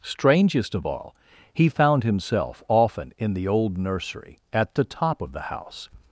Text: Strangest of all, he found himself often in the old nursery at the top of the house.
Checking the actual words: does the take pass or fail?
pass